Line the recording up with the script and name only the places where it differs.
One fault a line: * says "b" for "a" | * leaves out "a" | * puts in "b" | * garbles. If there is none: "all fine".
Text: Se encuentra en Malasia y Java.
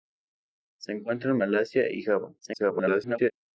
* garbles